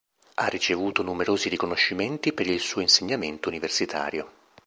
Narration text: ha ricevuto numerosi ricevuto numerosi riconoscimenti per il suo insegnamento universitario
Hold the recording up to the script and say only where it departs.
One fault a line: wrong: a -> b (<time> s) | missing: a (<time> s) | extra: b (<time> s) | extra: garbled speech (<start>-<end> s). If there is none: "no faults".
missing: ricevuto numerosi (1.5 s)